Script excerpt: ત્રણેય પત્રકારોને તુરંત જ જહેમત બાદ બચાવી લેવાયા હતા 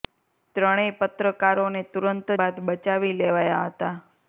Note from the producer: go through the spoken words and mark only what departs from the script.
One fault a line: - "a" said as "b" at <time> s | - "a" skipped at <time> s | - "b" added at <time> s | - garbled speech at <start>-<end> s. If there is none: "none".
- "જ જહેમત" skipped at 2.3 s